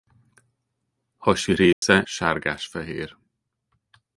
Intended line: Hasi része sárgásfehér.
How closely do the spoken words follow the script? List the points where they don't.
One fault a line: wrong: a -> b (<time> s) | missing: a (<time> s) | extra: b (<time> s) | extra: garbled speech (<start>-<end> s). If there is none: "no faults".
no faults